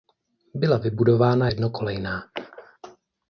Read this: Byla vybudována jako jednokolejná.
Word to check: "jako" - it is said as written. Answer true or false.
false